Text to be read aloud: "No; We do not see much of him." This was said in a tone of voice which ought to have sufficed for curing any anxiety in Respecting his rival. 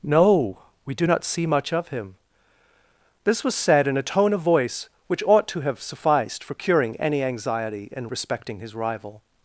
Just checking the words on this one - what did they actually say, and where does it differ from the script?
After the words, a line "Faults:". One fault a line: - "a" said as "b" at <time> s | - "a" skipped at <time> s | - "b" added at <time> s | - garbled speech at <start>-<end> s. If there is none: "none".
"No; We do not see much of him." This was said in a tone of voice which ought to have sufficed for curing any anxiety in Respecting his rival.
Faults:
none